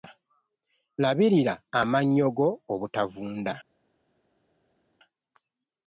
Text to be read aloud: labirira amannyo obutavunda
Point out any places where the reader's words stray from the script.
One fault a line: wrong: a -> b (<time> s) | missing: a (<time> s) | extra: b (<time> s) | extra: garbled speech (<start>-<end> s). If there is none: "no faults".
extra: go (2.4 s)